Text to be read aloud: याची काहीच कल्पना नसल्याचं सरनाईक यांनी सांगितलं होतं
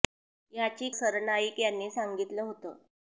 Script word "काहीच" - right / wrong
wrong